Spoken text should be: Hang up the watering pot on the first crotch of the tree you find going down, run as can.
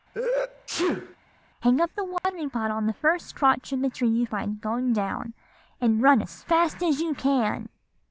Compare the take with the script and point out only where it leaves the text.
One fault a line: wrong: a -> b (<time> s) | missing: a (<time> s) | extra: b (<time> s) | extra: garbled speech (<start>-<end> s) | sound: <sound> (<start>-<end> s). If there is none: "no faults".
sound: sneeze (0.1-1.2 s)
sound: dropout (2.2-2.2 s)
extra: and (5.8 s)
extra: fast as you (6.4 s)